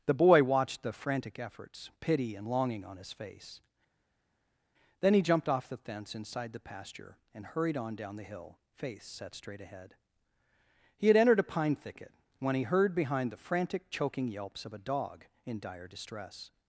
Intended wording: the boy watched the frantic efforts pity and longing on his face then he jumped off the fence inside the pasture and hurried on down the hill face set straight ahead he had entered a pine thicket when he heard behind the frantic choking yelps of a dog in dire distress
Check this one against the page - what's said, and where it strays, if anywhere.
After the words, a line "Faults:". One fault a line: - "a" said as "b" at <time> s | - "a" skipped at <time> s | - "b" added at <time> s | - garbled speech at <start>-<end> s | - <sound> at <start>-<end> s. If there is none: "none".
the boy watched the frantic efforts pity and longing on his face then he jumped off the fence inside the pasture and hurried on down the hill face set straight ahead he had entered a pine thicket when he heard behind the frantic choking yelps of a dog in dire distress
Faults:
none